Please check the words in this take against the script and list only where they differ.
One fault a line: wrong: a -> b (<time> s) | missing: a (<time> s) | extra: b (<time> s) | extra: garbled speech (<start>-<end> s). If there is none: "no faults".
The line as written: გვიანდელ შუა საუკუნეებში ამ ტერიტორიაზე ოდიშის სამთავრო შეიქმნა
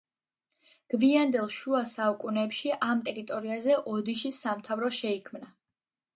no faults